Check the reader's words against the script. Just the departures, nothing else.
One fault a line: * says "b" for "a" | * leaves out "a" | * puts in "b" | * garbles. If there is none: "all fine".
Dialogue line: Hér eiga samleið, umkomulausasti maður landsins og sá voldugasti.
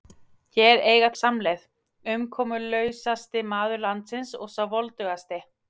all fine